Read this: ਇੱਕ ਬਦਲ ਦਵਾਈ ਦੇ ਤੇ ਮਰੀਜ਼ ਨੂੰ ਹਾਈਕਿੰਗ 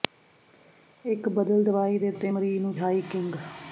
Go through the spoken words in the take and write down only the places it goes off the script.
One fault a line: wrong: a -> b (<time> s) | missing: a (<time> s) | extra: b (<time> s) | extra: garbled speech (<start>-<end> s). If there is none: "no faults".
no faults